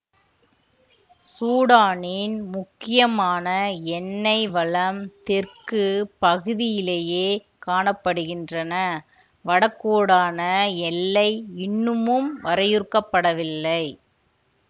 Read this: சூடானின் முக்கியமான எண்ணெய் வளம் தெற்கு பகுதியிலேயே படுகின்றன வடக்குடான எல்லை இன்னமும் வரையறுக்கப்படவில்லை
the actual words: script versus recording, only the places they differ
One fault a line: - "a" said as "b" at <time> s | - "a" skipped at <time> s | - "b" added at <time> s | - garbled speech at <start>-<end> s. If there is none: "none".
- "காண" added at 7.6 s